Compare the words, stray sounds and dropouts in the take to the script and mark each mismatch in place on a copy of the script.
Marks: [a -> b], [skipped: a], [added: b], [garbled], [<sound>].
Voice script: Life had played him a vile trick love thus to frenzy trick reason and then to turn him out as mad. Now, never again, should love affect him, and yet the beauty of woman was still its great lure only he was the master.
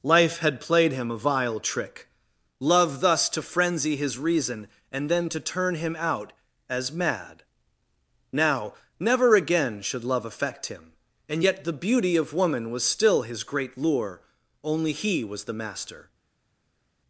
Life had played him a vile trick love thus to frenzy [trick -> his] reason and then to turn him out as mad. Now, never again, should love affect him, and yet the beauty of woman was still [its -> his] great lure only he was the master.